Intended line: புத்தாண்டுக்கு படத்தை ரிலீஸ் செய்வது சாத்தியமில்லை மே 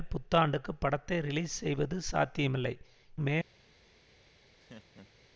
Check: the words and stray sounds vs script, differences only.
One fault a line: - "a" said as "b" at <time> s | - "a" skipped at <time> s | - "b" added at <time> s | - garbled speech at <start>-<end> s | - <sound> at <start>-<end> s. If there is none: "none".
- laugh at 4.6-5.3 s